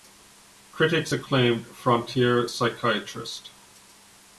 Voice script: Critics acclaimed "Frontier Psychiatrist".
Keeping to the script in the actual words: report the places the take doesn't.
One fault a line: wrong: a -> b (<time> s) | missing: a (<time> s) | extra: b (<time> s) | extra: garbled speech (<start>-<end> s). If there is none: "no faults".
no faults